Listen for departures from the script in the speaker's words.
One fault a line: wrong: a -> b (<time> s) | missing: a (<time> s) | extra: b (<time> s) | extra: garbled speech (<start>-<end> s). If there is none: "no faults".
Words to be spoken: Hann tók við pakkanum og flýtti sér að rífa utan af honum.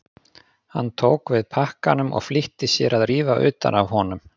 no faults